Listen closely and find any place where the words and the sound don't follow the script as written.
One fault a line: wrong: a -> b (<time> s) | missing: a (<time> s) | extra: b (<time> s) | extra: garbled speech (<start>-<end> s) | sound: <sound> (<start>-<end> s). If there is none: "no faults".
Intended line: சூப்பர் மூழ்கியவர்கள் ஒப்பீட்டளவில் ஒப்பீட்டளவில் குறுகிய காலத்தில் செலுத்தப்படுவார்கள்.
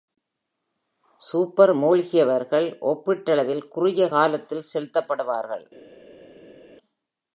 missing: ஒப்பீட்டளவில் (3.7 s)